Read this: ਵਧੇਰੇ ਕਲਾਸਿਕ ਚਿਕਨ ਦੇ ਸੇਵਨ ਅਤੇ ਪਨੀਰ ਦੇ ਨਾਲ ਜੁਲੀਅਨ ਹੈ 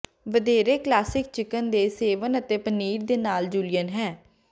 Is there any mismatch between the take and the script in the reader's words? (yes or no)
no